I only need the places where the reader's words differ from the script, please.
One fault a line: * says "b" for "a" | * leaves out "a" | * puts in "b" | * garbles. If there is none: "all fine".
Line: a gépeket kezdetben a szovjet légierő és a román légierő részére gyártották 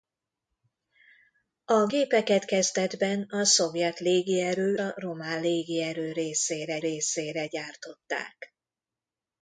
* leaves out "és"
* puts in "részére"